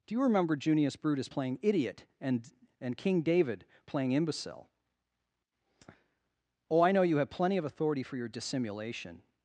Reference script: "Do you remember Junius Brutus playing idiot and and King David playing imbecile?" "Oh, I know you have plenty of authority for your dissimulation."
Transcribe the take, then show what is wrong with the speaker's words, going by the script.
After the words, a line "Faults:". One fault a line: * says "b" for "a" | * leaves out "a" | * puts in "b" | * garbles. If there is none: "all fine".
"Do you remember Junius Brutus playing idiot and and King David playing imbecile?" "Oh, I know you have plenty of authority for your dissimulation."
Faults:
all fine